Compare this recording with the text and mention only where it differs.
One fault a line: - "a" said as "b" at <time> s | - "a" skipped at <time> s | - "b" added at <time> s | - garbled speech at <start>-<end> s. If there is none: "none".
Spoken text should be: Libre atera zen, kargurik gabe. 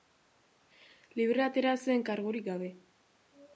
none